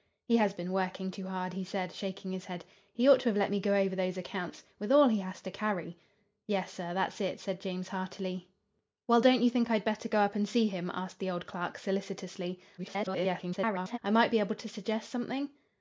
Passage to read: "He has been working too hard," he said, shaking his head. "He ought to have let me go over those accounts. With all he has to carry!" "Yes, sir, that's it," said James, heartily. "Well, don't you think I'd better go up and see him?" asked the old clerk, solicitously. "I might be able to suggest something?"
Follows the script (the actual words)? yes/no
no